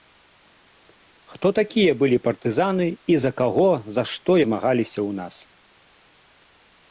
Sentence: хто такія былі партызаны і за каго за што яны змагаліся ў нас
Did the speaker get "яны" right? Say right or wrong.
wrong